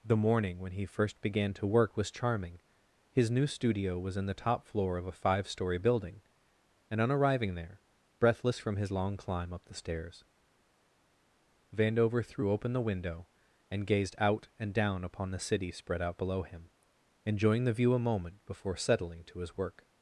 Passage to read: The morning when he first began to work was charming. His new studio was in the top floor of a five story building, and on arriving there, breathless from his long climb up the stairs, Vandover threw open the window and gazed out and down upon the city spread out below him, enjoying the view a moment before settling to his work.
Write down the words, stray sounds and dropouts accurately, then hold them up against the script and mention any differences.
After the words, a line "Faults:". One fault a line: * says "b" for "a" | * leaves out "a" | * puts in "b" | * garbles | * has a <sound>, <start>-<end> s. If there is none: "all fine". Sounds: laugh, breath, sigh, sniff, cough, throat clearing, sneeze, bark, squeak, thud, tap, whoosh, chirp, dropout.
The morning when he first began to work was charming. His new studio was in the top floor of a five story building, and on arriving there, breathless from his long climb up the stairs, Vandover threw open the window and gazed out and down upon the city spread out below him, enjoying the view a moment before settling to his work.
Faults:
all fine